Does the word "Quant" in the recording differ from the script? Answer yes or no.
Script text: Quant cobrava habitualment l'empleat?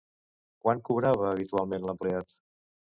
no